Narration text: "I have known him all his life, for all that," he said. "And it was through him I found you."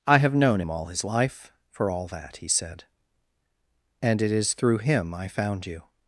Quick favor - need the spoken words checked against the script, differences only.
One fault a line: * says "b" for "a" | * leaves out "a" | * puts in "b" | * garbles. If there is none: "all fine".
* says "is" for "was"